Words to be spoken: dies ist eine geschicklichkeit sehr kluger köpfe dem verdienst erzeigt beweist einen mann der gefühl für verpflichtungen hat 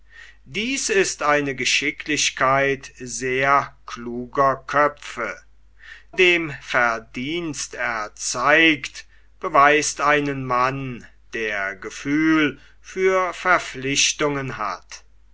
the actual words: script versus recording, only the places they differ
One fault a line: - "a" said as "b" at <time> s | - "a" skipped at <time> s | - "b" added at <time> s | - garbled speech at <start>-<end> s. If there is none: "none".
none